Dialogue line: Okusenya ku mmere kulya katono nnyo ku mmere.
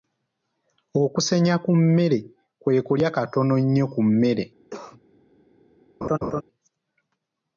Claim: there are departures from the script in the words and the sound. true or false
true